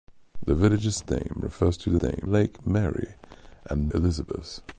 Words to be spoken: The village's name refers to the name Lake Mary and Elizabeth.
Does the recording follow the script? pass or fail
pass